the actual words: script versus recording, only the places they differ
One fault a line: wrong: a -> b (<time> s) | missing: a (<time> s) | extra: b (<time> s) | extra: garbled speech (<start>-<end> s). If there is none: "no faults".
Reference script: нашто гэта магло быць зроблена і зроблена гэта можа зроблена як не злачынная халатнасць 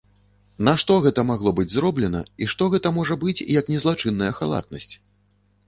wrong: зроблена -> што (2.5 s)
wrong: зроблена -> быць (3.3 s)